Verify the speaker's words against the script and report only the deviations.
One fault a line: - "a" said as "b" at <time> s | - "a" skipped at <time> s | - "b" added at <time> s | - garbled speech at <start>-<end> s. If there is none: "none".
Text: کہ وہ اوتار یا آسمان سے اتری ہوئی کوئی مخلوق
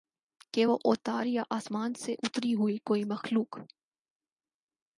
none